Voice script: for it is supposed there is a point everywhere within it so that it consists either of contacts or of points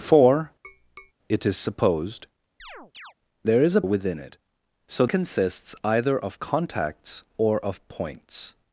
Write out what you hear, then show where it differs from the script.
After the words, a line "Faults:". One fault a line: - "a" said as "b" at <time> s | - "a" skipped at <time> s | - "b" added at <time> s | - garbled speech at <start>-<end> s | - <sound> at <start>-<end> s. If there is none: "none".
for it is supposed there is a within it so consists either of contacts or of points
Faults:
- tap at 0.6-1.1 s
- chirp at 2.6-3.1 s
- "point everywhere" skipped at 3.8 s
- "that it" skipped at 5.1 s